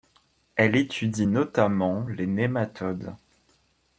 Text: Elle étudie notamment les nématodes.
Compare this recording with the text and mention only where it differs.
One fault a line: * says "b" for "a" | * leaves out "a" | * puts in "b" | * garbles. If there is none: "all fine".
all fine